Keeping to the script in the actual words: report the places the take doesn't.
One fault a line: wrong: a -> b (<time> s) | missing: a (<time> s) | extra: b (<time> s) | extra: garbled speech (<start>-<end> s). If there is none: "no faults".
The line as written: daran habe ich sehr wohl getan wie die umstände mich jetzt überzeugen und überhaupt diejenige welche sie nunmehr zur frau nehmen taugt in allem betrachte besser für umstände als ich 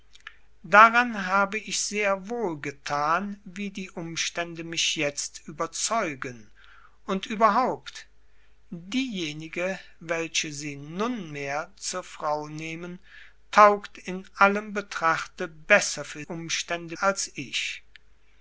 no faults